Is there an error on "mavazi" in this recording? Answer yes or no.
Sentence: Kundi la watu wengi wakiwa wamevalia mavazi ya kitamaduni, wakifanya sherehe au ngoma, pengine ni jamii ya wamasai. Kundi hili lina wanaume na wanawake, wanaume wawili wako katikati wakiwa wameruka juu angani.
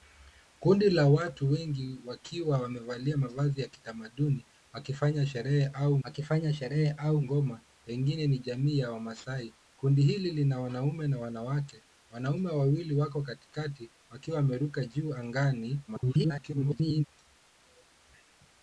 no